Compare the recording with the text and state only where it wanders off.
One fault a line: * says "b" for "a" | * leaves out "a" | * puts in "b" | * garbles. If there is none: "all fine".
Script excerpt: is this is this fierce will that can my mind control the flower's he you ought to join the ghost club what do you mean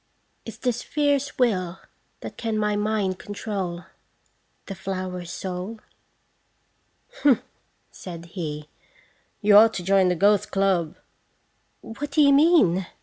* leaves out "is this"
* puts in "soul humph said"